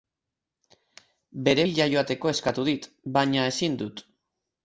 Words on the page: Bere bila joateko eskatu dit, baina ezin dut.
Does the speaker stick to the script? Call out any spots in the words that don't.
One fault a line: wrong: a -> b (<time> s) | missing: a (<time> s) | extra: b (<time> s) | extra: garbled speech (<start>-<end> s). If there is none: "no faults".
no faults